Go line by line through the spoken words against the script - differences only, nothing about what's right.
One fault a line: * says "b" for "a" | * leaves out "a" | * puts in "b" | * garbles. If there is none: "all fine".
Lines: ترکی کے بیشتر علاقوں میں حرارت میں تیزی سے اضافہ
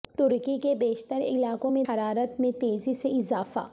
all fine